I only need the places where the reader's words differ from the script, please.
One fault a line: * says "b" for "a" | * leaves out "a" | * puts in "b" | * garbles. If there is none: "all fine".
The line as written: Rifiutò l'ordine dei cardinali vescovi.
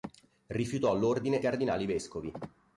* leaves out "dei"